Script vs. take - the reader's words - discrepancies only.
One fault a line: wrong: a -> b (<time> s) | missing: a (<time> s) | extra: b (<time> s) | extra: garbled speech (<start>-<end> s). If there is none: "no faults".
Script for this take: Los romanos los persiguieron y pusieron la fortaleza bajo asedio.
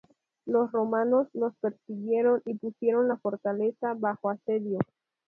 no faults